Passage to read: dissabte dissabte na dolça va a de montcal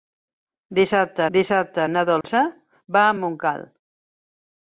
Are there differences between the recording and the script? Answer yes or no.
no